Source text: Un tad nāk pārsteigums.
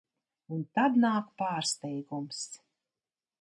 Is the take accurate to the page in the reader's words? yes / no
yes